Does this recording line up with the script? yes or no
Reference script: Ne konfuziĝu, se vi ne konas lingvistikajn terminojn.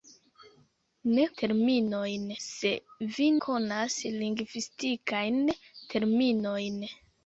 no